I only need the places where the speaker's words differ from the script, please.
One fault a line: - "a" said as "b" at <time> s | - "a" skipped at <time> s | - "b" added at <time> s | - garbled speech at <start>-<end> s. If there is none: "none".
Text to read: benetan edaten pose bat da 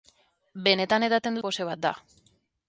none